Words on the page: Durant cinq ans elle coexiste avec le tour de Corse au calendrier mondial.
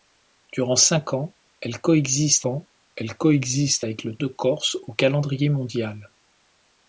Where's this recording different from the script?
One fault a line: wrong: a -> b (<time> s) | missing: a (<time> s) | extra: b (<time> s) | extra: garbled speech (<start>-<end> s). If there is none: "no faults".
extra: ans elle coexiste (2.5 s)
missing: tour (4.2 s)